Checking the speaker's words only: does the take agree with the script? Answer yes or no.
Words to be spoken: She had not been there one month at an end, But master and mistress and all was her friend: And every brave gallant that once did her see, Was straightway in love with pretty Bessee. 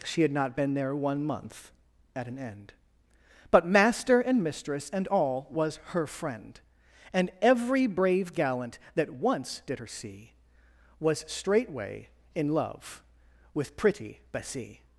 yes